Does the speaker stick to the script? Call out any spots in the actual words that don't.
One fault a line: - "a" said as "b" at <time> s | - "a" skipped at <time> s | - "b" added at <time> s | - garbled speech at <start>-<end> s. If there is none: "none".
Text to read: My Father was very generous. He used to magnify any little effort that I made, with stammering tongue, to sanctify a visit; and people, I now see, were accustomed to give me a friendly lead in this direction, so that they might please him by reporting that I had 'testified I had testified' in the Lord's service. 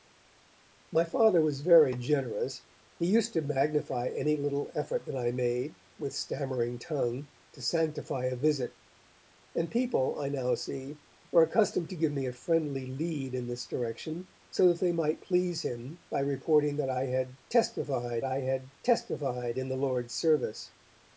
none